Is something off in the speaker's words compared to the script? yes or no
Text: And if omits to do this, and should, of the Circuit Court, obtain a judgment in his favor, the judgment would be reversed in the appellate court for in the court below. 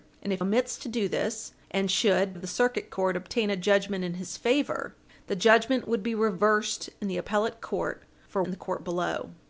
no